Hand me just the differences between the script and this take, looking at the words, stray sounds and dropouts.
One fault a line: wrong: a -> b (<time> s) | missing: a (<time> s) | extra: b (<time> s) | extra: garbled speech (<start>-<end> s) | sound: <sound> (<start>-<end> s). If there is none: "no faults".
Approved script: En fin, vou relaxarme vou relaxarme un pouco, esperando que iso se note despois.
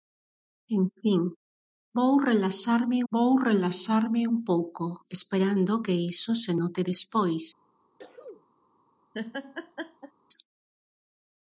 sound: sneeze (8.0-8.5 s)
sound: laugh (9.1-10.1 s)